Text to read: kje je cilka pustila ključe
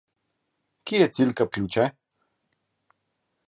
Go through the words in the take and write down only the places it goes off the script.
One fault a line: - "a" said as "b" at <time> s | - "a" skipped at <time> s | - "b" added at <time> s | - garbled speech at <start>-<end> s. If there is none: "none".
- "pustila" skipped at 1.4 s